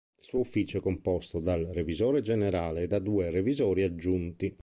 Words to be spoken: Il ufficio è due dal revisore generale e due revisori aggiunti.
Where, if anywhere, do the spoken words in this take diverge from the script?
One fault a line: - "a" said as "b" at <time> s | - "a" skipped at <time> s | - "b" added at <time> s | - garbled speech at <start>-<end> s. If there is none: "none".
- "suo" added at 0.2 s
- "due" said as "composto" at 0.8 s
- "da" added at 2.9 s